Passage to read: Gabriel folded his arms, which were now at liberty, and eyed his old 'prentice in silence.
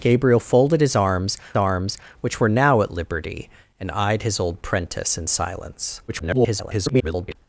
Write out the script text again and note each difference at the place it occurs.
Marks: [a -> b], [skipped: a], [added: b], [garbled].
Gabriel folded his arms, [added: arms] which were now at liberty, and eyed his old 'prentice in silence. [garbled]